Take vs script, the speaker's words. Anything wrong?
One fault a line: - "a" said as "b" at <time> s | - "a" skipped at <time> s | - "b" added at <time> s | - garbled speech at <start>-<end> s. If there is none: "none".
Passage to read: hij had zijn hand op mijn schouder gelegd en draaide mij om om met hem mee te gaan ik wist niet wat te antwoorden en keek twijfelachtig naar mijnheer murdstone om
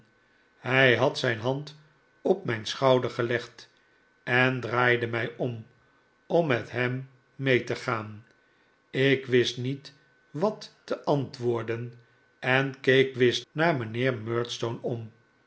- "twijfelachtig" said as "wist" at 13.1 s